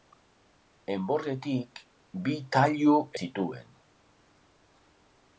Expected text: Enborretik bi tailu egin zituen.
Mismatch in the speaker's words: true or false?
true